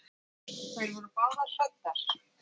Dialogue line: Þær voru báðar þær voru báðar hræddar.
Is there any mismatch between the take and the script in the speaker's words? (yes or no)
yes